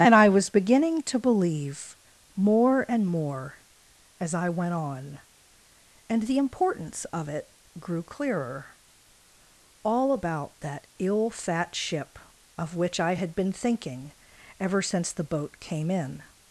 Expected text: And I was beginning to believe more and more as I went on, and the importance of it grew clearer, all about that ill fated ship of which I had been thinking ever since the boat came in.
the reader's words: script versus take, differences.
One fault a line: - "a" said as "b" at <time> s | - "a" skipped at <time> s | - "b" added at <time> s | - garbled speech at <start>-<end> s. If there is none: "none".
- "fated" said as "fat" at 11.3 s